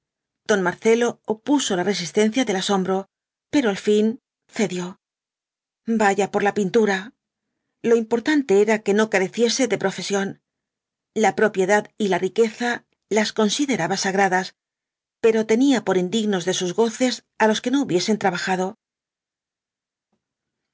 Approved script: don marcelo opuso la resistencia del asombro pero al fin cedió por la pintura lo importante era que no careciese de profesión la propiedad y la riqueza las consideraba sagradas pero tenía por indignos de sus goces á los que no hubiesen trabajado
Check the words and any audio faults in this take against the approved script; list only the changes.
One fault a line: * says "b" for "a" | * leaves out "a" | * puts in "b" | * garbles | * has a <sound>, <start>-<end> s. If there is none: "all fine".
* puts in "vaya"